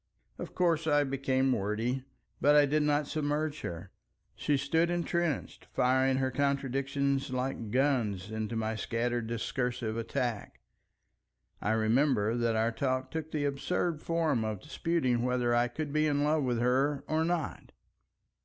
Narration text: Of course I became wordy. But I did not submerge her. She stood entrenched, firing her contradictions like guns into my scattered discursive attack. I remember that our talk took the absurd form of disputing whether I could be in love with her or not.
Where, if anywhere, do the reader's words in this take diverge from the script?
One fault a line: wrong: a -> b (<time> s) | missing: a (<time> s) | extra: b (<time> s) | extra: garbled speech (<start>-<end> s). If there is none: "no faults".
no faults